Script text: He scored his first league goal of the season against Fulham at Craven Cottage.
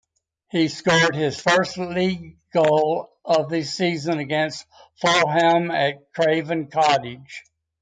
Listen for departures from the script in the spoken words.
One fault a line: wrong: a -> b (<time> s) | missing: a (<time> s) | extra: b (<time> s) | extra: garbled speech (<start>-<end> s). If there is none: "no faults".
no faults